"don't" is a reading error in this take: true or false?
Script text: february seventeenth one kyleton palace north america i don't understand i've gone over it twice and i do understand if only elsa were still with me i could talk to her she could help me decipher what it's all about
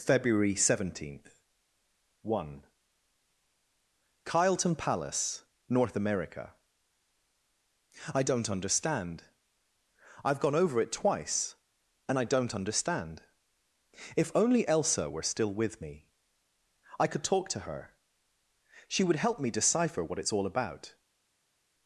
false